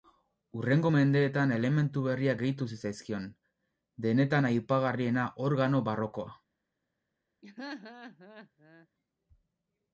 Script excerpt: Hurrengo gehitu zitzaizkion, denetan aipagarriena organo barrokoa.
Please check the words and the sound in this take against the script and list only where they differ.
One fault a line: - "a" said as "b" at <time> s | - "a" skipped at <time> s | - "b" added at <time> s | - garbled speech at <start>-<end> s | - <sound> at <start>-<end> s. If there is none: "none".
- "mendeetan elementu berriak" added at 0.9 s
- laugh at 7.4-8.9 s